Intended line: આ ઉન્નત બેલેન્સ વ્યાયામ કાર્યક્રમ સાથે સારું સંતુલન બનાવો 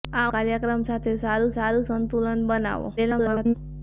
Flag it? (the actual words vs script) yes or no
yes